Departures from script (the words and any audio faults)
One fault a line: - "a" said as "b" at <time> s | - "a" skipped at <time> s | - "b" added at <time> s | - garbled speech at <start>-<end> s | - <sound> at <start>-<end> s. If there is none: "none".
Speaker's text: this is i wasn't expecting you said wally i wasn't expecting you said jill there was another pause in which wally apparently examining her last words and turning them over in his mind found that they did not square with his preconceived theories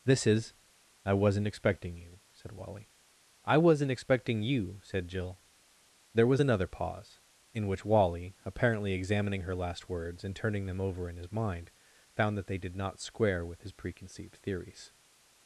none